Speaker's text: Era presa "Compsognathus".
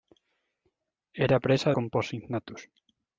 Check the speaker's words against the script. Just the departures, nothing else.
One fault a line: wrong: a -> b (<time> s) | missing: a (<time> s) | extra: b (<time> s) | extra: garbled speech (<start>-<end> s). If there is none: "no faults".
no faults